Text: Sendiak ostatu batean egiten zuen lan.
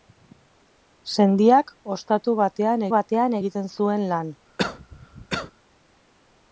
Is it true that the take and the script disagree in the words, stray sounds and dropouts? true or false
true